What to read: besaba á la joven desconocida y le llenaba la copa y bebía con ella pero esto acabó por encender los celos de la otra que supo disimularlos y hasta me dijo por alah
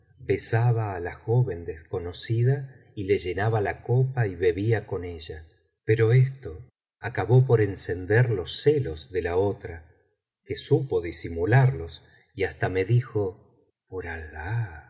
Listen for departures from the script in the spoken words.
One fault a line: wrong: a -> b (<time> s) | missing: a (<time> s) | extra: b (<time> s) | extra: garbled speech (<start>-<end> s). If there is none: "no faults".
no faults